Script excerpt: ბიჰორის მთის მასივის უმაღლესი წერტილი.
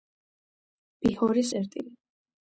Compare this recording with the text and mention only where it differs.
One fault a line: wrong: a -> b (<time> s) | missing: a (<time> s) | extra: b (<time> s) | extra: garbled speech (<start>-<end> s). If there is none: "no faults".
missing: მთის მასივის უმაღლესი (1.5 s)